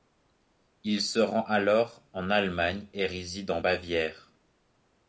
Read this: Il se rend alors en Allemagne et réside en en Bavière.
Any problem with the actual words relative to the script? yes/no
yes